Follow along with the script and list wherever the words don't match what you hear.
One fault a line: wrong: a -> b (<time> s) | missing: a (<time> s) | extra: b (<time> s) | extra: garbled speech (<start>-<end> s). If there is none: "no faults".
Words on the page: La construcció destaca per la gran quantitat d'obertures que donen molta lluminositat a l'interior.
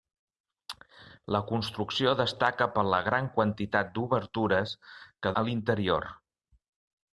missing: donen molta lluminositat (5.3 s)